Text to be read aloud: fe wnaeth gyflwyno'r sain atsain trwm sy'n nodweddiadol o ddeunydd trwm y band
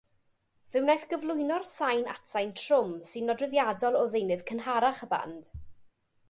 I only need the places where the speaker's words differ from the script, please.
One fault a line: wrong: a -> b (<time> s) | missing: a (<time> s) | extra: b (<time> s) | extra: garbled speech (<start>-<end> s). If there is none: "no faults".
wrong: trwm -> cynharach (4.5 s)